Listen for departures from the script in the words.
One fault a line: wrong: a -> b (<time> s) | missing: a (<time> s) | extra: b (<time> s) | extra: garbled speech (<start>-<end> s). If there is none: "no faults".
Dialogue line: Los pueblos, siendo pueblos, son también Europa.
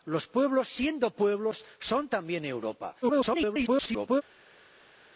extra: garbled speech (3.0-4.2 s)